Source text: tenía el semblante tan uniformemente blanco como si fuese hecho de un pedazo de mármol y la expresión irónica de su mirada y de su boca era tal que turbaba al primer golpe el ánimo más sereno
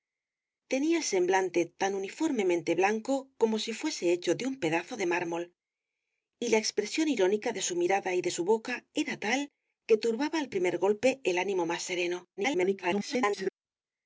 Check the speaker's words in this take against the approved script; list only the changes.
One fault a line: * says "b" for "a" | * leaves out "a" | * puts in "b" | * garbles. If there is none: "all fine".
* garbles